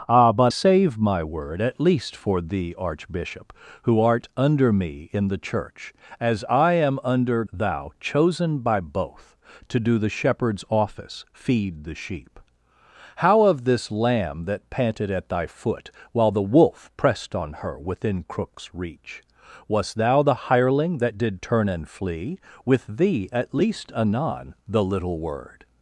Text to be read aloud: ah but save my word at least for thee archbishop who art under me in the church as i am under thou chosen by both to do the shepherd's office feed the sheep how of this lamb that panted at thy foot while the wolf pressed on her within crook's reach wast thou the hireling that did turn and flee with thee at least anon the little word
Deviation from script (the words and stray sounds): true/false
false